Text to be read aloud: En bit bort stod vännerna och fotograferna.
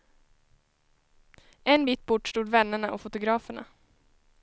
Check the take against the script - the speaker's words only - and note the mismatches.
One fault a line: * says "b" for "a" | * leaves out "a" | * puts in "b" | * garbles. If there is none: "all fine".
all fine